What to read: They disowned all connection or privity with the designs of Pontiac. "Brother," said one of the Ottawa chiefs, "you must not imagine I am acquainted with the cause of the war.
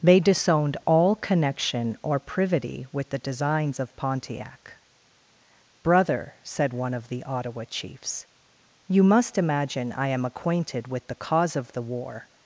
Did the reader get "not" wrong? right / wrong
wrong